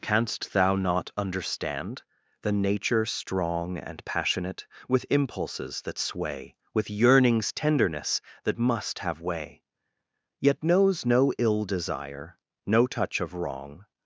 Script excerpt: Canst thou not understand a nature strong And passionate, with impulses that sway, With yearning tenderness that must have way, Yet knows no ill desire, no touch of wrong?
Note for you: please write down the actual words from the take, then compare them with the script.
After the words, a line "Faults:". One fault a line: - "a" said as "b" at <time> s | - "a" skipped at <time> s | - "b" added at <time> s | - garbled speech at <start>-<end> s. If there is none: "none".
Canst thou not understand the nature strong And passionate, with impulses that sway, With yearnings tenderness that must have way, Yet knows no ill desire, no touch of wrong?
Faults:
- "a" said as "the" at 2.4 s
- "yearning" said as "yearnings" at 6.9 s